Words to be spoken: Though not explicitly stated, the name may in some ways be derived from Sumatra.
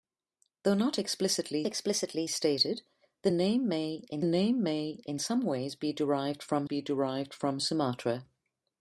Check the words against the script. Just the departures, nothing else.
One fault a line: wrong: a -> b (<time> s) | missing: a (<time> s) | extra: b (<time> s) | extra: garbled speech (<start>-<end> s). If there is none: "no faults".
extra: explicitly (1.6 s)
extra: name may in (4.2 s)
extra: be derived from (6.6 s)